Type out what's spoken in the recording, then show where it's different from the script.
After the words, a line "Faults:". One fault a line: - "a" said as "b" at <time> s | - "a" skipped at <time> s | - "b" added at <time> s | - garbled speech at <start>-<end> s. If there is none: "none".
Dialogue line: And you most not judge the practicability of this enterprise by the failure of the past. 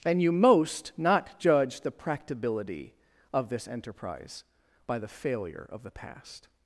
And you most not judge the practicability of this enterprise by the failure of the past.
Faults:
none